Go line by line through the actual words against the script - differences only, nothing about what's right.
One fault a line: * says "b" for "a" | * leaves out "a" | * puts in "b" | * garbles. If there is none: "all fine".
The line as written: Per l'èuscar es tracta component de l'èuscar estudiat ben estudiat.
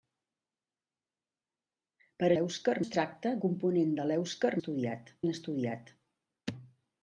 all fine